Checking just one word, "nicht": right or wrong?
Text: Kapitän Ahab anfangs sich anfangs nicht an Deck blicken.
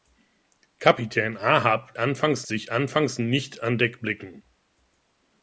right